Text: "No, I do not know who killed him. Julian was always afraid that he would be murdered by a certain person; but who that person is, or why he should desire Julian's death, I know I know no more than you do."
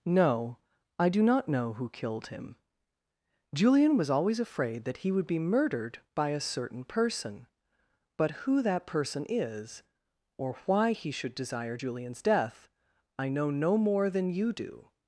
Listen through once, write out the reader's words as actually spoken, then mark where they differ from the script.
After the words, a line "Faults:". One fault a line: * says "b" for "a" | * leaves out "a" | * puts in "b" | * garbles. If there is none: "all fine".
"No, I do not know who killed him. Julian was always afraid that he would be murdered by a certain person; but who that person is, or why he should desire Julian's death, I know no more than you do."
Faults:
* leaves out "I know"